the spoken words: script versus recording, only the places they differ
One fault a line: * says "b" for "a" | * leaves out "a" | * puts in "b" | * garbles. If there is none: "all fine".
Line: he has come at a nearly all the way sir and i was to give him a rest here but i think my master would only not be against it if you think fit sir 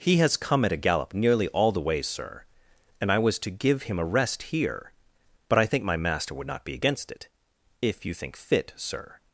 * puts in "gallop"
* leaves out "only"